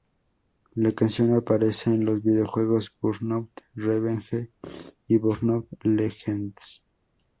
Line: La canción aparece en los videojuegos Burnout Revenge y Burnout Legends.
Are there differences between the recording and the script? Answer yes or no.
no